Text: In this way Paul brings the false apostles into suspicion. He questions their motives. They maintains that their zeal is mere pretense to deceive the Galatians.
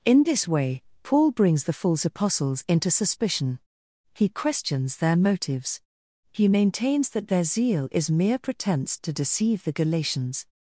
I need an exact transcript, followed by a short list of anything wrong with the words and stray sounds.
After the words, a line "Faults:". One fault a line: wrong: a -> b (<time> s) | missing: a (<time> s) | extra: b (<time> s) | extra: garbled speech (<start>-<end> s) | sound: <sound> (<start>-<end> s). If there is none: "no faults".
In this way Paul brings the false apostles into suspicion. He questions their motives. He maintains that their zeal is mere pretense to deceive the Galatians.
Faults:
wrong: They -> He (6.3 s)